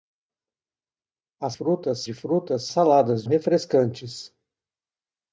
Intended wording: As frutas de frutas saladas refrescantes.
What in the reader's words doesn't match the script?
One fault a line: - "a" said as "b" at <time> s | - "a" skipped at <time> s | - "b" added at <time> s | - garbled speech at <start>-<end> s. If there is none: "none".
none